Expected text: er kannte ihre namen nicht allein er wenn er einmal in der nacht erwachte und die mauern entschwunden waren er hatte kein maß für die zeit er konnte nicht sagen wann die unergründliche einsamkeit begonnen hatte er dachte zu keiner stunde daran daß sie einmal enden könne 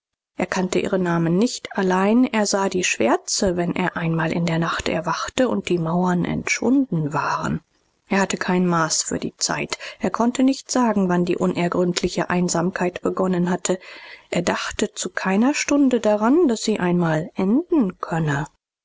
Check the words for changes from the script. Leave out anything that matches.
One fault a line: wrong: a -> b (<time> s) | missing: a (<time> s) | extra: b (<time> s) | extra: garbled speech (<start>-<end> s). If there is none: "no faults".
extra: sah die schwärze (2.5 s)